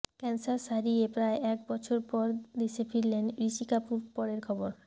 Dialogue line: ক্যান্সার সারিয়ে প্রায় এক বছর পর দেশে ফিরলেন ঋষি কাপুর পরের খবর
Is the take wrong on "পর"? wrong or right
right